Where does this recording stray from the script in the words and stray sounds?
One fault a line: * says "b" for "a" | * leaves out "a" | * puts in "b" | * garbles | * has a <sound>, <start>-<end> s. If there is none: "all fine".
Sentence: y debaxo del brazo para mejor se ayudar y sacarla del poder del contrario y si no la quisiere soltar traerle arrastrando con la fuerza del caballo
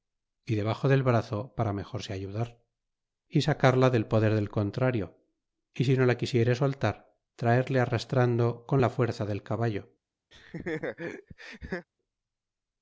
* has a laugh, 10.3-11.9 s